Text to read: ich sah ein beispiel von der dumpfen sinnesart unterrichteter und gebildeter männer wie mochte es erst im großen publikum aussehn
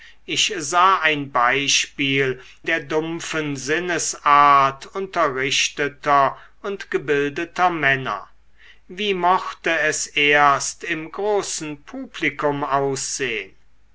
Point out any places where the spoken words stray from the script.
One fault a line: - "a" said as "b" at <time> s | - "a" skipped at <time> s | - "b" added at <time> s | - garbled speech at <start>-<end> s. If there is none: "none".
- "von" skipped at 2.4 s